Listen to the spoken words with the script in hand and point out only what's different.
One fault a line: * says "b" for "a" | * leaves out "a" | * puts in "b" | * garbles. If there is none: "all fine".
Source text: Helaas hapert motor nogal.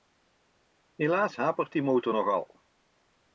* puts in "die"